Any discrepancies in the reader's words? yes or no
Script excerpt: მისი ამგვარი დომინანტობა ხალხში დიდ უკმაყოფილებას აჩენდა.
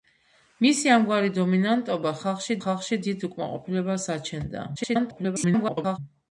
yes